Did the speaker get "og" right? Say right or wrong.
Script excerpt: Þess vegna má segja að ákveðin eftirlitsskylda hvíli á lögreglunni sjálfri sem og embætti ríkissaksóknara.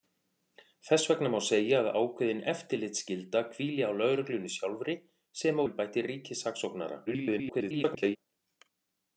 wrong